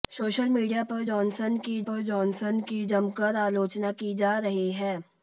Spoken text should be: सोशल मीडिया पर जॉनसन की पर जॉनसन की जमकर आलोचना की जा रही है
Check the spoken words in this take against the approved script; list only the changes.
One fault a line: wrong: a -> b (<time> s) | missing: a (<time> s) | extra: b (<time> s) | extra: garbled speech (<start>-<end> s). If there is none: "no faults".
no faults